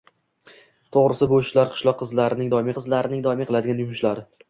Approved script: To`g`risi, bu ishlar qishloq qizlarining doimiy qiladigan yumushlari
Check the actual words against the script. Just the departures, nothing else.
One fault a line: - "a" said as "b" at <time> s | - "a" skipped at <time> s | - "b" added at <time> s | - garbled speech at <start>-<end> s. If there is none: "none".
- "qizlarining doimiy" added at 2.8 s